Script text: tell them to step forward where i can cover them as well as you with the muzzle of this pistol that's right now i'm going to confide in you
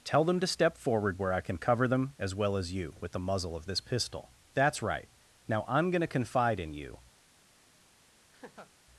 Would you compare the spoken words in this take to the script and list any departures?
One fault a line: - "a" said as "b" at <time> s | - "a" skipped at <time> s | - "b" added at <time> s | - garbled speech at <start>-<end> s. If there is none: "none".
none